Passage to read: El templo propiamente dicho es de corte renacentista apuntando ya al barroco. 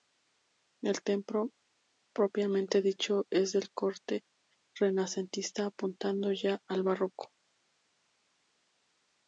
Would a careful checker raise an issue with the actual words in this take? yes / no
no